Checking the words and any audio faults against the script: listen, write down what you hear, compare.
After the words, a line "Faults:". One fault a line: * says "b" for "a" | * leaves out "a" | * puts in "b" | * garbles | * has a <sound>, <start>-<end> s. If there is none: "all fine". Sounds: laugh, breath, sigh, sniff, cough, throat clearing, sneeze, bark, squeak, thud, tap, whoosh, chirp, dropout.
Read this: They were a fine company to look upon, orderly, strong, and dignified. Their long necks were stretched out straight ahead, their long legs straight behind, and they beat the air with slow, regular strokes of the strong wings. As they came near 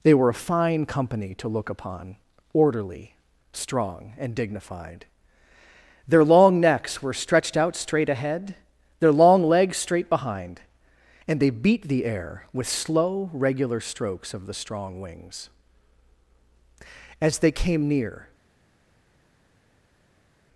They were a fine company to look upon, orderly, strong, and dignified. Their long necks were stretched out straight ahead, their long legs straight behind, and they beat the air with slow, regular strokes of the strong wings. As they came near
Faults:
all fine